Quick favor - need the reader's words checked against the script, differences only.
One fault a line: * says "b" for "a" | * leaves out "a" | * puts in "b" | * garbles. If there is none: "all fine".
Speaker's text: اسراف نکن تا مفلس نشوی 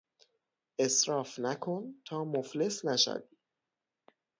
all fine